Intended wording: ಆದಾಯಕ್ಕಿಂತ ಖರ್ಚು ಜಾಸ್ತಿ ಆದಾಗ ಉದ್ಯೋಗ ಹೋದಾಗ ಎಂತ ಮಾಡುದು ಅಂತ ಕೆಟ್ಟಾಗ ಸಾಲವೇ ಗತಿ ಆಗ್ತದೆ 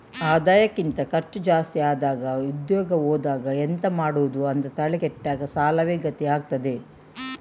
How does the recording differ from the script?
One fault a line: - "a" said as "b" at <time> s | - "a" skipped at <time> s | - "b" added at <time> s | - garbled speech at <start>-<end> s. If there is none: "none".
- "ತಲೆ" added at 4.8 s